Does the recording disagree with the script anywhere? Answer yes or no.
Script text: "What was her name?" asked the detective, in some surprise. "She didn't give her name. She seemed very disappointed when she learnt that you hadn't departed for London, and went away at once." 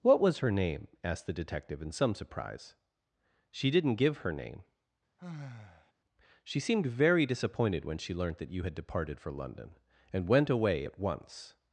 yes